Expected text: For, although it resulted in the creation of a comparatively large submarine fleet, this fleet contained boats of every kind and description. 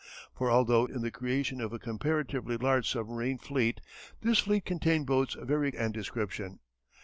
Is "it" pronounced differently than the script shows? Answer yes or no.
yes